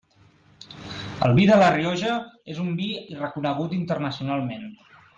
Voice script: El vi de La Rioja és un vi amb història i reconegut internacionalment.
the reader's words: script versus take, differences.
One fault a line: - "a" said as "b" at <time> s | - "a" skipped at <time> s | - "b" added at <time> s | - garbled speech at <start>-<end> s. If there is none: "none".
- "amb història" skipped at 2.9 s